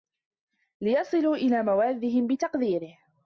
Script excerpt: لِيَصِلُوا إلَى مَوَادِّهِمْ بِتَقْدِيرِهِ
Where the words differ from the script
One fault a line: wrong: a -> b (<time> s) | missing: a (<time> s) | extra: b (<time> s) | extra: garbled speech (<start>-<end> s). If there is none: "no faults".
no faults